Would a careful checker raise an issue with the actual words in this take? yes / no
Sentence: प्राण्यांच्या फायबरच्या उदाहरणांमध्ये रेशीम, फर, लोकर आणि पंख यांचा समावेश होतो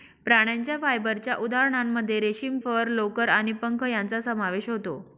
no